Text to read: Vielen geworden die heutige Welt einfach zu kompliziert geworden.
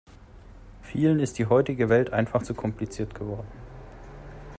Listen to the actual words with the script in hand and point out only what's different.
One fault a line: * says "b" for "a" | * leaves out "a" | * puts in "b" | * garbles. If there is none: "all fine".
* says "ist" for "geworden"